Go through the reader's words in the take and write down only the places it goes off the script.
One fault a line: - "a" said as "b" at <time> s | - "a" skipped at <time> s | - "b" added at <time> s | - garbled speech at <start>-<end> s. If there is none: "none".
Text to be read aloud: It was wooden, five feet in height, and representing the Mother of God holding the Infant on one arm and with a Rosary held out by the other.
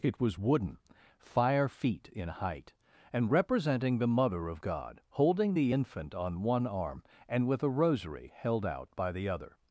- "five" said as "fire" at 1.2 s